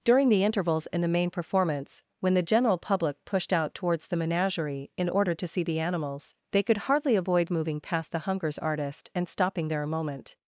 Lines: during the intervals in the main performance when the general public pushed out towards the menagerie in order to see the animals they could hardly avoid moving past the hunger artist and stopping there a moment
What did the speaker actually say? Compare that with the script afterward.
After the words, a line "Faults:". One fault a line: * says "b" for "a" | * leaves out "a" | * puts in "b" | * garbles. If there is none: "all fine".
during the intervals in the main performance when the general public pushed out towards the menagerie in order to see the animals they could hardly avoid moving past the hungers artist and stopping there a moment
Faults:
* says "hungers" for "hunger"